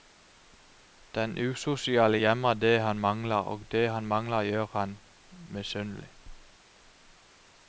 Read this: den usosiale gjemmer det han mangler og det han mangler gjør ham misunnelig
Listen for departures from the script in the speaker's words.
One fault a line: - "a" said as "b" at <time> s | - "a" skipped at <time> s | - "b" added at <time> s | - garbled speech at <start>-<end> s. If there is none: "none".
none